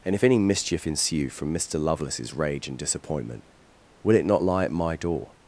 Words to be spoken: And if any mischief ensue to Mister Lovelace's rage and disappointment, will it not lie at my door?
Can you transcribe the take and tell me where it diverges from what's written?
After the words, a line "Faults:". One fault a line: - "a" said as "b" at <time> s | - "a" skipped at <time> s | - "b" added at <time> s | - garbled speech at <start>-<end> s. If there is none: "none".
And if any mischief ensue from Mister Lovelace's rage and disappointment, will it not lie at my door?
Faults:
- "to" said as "from" at 1.3 s